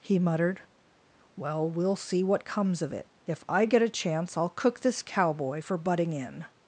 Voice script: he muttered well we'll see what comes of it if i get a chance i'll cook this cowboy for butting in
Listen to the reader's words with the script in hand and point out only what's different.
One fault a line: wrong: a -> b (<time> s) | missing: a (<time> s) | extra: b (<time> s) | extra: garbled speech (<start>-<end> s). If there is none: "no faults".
no faults